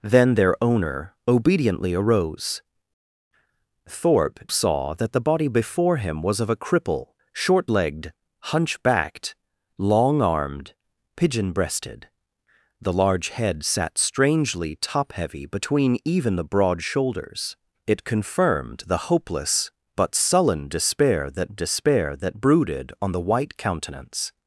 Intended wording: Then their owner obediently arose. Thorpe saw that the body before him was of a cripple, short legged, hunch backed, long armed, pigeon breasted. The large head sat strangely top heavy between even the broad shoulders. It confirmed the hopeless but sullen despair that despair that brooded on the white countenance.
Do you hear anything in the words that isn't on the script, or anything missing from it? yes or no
no